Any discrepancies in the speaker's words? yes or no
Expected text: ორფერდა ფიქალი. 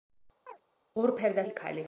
no